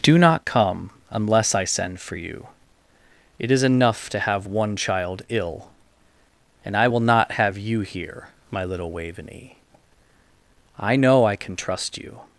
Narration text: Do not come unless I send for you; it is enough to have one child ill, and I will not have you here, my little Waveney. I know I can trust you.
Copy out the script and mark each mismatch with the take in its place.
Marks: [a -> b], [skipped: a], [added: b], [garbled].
Do not come unless I send for you; it is enough to have one child ill, and I will not have you here, my little Waveney. I know I can trust you.